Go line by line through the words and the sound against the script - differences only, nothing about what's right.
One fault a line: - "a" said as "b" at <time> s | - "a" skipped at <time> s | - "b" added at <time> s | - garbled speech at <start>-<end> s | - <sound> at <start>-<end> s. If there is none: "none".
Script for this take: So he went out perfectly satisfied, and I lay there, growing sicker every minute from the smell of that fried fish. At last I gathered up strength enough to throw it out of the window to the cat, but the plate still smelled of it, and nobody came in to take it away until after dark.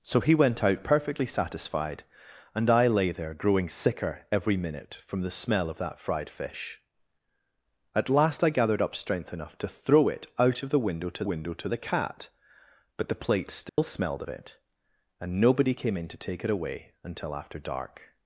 - "window to" added at 11.2 s
- dropout at 13.7-13.8 s